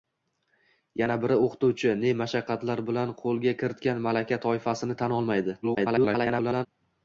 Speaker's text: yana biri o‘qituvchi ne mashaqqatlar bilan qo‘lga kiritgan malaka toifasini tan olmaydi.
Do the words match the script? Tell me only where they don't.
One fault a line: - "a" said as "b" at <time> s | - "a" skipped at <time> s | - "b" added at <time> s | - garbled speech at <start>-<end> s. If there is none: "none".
- garbled speech at 5.6-6.7 s